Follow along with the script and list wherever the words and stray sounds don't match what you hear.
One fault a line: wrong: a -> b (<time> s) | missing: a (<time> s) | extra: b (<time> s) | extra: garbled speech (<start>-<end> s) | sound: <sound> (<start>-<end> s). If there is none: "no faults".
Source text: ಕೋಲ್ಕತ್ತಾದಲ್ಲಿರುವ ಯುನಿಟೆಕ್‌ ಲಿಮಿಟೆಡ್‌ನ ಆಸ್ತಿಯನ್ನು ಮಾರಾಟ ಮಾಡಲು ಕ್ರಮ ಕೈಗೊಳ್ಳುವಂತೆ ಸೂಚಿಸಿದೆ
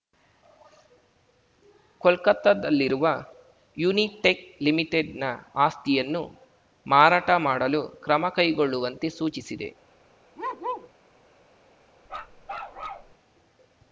sound: bark (10.4-10.9 s)
sound: bark (12.1-13.1 s)